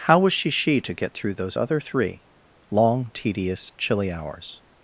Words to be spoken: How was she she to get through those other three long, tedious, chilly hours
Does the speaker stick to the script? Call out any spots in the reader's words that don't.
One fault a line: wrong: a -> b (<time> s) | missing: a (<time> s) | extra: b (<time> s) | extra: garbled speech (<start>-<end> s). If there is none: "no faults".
no faults